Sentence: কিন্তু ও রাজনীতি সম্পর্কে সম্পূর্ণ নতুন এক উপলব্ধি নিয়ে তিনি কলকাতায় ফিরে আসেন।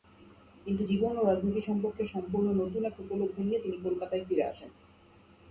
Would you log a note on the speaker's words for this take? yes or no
yes